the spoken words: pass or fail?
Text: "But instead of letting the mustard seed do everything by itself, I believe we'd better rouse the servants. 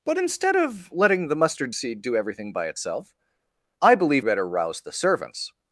fail